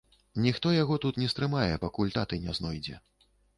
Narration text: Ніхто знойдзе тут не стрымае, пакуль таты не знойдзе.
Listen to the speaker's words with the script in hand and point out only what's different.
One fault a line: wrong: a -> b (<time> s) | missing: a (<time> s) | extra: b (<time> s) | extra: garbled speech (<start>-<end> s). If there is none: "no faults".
wrong: знойдзе -> яго (0.8 s)